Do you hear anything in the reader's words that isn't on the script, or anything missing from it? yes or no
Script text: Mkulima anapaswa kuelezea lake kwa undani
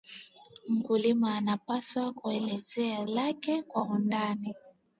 no